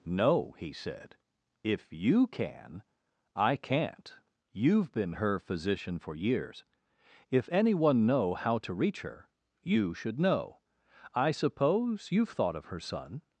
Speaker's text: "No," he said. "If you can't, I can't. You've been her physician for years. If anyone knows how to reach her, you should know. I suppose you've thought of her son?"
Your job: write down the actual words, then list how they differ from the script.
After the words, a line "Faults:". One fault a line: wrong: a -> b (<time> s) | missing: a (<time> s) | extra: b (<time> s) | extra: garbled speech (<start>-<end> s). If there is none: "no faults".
"No," he said. "If you can, I can't. You've been her physician for years. If anyone know how to reach her, you should know. I suppose you've thought of her son?"
Faults:
wrong: can't -> can (2.3 s)
wrong: knows -> know (8.1 s)